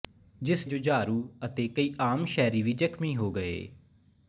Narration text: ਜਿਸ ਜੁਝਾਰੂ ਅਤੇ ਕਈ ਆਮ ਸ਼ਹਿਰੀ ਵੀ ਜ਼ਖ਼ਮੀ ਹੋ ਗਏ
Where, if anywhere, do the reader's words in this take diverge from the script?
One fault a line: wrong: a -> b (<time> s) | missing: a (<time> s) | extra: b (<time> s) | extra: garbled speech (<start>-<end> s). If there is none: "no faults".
no faults